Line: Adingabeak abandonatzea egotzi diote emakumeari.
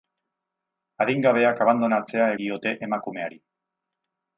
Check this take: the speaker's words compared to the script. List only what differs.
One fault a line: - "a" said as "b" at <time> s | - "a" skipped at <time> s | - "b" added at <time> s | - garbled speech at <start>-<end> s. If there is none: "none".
- "egotzi" skipped at 2.3 s